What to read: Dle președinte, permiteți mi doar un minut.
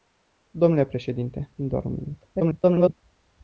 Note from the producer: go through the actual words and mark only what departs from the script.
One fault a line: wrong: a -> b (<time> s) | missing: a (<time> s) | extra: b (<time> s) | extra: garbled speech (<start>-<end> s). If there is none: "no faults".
missing: permiteți (1.5 s)
extra: garbled speech (2.3-2.9 s)